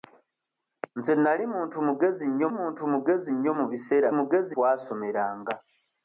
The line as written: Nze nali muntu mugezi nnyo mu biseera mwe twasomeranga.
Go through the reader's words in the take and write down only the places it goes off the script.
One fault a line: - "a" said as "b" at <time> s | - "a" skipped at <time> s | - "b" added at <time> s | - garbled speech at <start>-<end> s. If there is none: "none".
- "muntu mugezi nnyo" added at 2.6 s
- "mwe" said as "mugezi" at 4.2 s